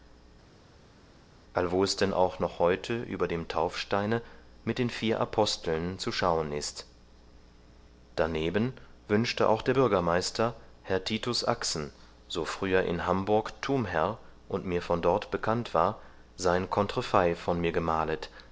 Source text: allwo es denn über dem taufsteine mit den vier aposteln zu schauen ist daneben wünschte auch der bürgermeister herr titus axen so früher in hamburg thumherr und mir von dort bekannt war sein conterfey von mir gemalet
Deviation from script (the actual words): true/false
true